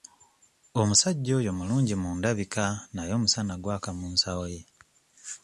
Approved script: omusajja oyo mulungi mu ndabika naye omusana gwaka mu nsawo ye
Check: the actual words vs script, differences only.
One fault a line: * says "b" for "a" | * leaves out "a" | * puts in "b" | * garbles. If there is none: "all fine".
all fine